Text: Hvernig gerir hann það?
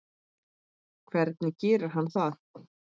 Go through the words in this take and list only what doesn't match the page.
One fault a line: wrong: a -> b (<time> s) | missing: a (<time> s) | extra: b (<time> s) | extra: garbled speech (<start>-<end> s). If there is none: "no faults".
no faults